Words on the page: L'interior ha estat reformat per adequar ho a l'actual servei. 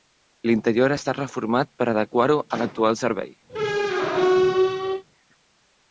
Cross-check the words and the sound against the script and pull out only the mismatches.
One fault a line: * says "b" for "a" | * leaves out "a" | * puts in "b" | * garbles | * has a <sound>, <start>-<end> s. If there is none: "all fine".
* has a squeak, 3.5-5.0 s